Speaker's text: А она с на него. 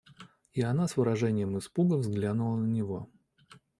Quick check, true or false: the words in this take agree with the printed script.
false